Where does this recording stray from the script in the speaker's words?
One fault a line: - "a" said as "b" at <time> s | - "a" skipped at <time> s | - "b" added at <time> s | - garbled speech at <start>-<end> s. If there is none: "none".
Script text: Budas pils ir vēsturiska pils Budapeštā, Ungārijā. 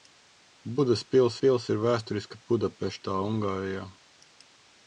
- "pils" added at 1.4 s
- "pils" skipped at 2.4 s